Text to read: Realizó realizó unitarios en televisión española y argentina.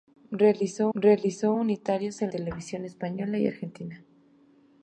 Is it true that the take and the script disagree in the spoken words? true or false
false